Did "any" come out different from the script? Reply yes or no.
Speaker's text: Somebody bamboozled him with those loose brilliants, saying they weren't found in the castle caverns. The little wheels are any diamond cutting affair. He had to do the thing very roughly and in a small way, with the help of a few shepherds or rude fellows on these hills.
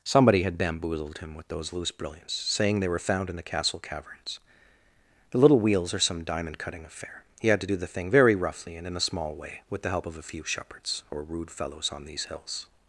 yes